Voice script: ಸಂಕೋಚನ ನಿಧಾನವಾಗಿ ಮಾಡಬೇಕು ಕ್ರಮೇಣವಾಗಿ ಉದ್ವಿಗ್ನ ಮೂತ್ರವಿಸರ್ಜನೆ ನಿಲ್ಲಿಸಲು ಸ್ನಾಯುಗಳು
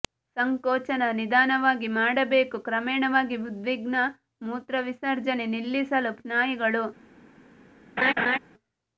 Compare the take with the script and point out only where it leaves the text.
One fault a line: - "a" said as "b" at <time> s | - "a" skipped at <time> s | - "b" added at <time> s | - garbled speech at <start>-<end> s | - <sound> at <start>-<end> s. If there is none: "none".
- laugh at 8.0-8.4 s